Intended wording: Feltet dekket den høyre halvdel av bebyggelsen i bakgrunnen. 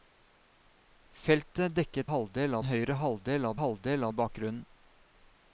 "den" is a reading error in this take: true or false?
true